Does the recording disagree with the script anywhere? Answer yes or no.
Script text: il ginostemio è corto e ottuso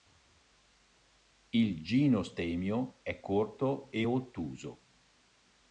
no